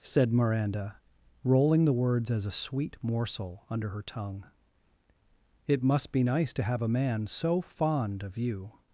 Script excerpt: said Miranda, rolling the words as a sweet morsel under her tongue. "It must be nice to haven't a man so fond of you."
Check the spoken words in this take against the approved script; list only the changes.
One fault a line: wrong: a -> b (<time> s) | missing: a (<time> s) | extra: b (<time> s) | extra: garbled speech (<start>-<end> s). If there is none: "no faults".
wrong: haven't -> have (6.6 s)